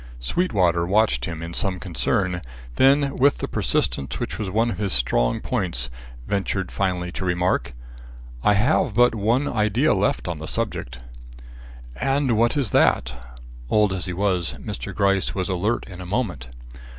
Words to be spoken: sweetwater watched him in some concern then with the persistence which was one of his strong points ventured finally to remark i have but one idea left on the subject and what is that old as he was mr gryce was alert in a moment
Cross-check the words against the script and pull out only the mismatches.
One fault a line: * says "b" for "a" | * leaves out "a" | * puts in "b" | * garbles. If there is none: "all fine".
all fine